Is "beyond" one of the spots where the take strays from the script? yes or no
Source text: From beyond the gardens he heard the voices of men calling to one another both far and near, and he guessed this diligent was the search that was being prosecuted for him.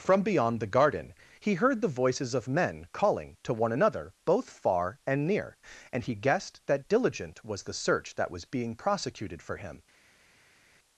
no